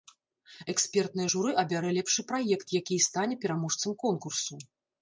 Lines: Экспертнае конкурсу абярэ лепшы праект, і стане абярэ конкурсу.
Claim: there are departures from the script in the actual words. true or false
true